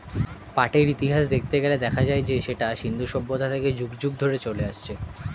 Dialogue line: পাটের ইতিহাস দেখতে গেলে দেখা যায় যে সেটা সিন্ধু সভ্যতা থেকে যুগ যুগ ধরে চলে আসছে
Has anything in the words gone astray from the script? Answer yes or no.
no